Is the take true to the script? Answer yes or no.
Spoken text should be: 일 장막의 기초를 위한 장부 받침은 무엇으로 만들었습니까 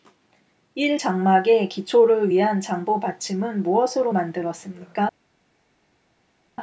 yes